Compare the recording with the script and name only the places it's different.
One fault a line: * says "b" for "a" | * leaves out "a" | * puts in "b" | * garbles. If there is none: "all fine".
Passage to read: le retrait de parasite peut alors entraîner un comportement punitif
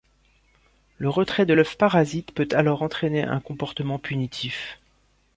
* puts in "l'œuf"